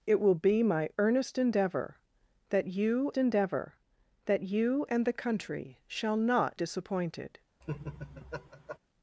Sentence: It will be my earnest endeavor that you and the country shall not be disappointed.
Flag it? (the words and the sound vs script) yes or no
yes